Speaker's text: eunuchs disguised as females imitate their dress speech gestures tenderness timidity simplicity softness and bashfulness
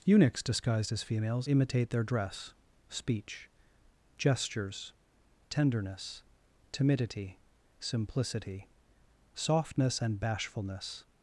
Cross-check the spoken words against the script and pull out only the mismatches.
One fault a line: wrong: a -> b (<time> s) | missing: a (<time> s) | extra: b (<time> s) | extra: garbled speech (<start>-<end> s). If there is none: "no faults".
no faults